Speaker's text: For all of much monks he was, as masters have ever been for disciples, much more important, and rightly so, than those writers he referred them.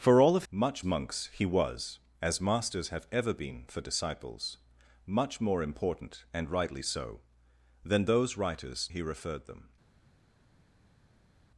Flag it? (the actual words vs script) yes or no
no